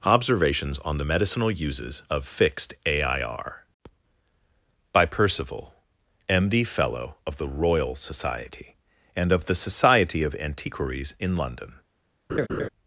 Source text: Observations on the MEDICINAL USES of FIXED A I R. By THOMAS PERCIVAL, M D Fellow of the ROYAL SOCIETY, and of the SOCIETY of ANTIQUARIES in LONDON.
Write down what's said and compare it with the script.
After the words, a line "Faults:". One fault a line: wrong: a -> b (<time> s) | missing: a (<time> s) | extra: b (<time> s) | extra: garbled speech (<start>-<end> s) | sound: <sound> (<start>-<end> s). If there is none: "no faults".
Observations on the MEDICINAL USES of FIXED A I R. By PERCIVAL, M D Fellow of the ROYAL SOCIETY, and of the SOCIETY of ANTIQUARIES in LONDON.
Faults:
missing: THOMAS (5.1 s)
sound: laugh (12.3-12.7 s)